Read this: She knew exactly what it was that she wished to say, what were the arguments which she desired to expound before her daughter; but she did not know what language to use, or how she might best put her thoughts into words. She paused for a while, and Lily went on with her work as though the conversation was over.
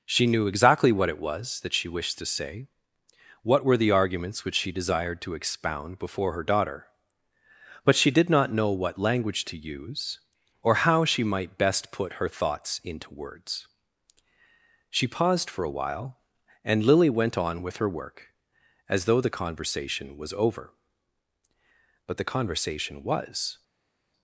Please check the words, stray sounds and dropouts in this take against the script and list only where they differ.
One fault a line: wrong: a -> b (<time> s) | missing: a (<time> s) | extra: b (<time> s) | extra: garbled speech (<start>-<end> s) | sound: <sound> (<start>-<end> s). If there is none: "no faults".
extra: But the conversation was (22.1 s)